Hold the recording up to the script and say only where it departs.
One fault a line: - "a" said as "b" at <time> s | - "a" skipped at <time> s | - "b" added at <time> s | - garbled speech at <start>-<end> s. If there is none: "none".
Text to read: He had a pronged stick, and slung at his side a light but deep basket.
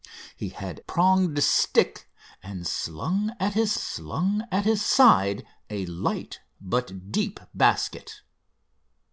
- "a" skipped at 0.8 s
- "slung at his" added at 3.7 s